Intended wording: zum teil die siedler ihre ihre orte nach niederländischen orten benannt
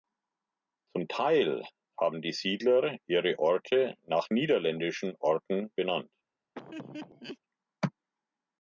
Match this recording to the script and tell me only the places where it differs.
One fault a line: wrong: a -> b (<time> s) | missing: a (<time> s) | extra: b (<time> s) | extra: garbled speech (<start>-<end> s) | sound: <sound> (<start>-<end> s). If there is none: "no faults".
extra: haben (1.9 s)
missing: ihre (3.4 s)
sound: laugh (6.5-7.4 s)